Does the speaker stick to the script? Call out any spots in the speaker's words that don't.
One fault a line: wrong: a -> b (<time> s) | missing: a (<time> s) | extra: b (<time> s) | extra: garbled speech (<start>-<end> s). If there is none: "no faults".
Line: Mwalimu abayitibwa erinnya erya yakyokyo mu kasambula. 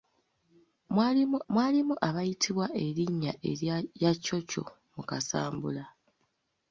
extra: mwalimu (1.5 s)